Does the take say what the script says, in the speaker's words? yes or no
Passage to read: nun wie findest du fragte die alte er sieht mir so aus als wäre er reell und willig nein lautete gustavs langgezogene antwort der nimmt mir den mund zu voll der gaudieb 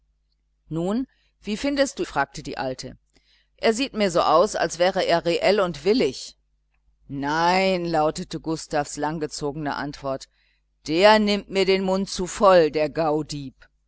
yes